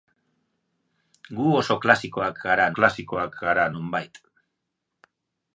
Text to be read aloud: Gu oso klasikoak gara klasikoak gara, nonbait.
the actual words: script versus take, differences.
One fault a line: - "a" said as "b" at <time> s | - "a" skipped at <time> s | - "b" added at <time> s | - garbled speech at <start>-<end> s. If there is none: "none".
none